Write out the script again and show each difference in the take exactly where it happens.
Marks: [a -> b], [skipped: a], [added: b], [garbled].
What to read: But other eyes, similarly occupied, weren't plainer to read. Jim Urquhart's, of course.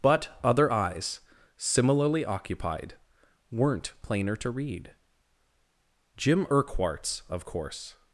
But other eyes, similarly occupied, weren't plainer to read. Jim Urquhart's, of course.